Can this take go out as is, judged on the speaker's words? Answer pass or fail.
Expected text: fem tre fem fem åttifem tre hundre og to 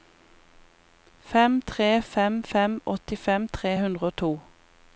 pass